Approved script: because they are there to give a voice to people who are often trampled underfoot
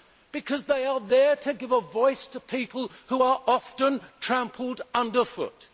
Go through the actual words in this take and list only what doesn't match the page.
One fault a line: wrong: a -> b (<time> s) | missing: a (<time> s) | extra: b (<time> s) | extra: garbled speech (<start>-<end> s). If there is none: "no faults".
no faults